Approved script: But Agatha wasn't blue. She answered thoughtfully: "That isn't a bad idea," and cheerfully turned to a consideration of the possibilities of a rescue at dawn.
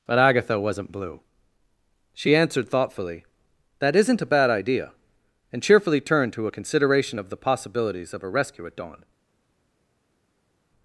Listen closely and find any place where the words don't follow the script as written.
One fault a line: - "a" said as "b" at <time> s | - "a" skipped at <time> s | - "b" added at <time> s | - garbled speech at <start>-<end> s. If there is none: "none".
none